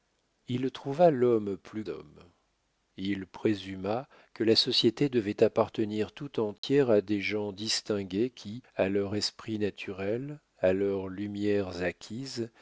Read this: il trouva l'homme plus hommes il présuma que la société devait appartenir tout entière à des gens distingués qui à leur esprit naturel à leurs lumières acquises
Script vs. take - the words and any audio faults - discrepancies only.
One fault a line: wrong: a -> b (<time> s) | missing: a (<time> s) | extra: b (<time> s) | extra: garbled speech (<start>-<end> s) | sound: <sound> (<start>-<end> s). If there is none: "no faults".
sound: dropout (6.6-6.6 s)